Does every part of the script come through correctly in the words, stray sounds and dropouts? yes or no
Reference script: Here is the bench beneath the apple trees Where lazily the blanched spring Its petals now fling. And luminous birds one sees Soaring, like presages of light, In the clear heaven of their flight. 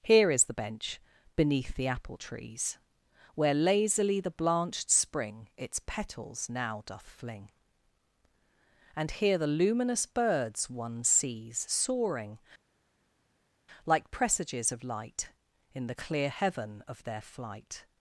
no